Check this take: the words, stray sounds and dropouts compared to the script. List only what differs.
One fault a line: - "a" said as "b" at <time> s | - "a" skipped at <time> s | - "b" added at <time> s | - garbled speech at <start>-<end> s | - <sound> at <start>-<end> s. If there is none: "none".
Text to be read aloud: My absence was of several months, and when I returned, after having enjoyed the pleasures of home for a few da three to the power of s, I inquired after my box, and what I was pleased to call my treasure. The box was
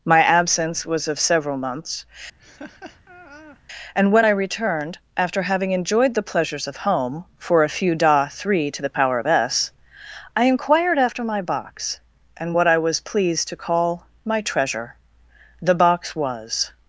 - laugh at 2.4-3.6 s